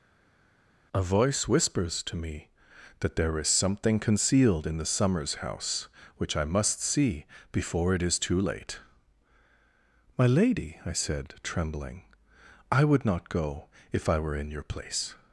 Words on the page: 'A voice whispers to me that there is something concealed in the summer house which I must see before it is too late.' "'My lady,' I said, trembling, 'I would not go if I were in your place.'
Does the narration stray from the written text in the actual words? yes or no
yes